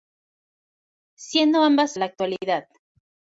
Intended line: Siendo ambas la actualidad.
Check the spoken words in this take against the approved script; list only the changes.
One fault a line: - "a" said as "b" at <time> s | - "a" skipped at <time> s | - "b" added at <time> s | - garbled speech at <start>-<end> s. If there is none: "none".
none